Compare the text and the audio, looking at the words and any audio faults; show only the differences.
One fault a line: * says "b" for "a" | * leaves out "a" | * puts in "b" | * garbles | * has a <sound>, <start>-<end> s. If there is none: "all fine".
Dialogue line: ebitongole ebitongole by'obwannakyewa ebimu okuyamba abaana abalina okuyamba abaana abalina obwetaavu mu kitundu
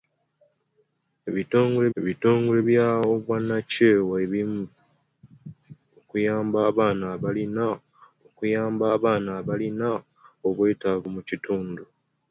all fine